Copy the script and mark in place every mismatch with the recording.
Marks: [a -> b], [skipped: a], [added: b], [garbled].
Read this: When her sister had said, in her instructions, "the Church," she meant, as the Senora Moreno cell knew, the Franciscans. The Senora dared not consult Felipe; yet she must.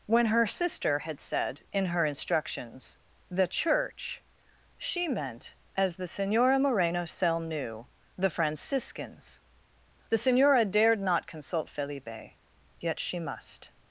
When her sister had said, in her instructions, "the Church," she meant, as the Senora Moreno cell knew, the Franciscans. The Senora dared not consult Felipe; yet she must.